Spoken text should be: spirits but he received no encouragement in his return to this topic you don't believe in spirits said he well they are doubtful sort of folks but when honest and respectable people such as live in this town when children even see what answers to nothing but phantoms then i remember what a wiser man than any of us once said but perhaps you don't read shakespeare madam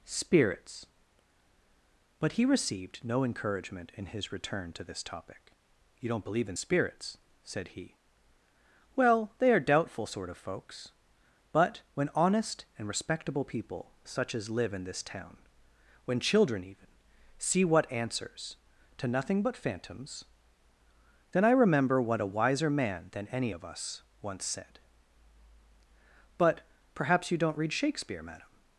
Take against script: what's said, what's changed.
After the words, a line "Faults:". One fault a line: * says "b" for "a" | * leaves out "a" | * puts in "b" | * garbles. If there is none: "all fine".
spirits but he received no encouragement in his return to this topic you don't believe in spirits said he well they are doubtful sort of folks but when honest and respectable people such as live in this town when children even see what answers to nothing but phantoms then i remember what a wiser man than any of us once said but perhaps you don't read shakespeare madam
Faults:
all fine